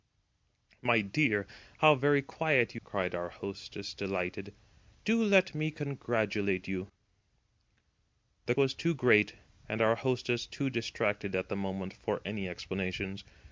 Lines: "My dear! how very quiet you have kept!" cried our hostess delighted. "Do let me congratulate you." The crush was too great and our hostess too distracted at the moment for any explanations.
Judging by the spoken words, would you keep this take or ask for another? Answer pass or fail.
fail